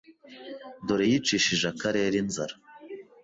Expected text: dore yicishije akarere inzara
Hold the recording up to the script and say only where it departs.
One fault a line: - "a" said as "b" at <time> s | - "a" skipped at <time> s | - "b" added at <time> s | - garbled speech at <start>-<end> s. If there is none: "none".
none